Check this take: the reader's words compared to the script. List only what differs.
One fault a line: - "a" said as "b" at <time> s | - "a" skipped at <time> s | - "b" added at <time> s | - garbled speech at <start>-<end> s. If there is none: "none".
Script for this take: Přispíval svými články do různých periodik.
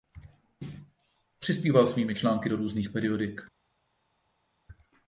none